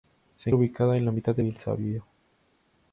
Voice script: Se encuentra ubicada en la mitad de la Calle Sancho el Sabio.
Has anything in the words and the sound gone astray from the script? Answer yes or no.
yes